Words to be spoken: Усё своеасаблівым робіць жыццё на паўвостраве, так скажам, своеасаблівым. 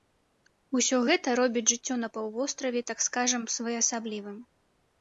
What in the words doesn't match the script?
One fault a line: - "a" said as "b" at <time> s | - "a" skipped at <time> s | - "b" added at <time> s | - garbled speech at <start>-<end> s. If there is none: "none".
- "своеасаблівым" said as "гэта" at 1.1 s